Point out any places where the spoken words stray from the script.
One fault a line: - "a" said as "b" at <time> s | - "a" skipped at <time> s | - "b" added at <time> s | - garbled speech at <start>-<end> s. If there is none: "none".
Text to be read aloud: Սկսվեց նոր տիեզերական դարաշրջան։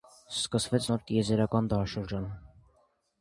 none